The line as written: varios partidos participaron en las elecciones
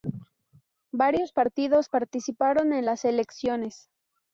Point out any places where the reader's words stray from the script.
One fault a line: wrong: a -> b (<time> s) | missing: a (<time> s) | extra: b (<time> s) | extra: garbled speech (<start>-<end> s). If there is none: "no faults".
no faults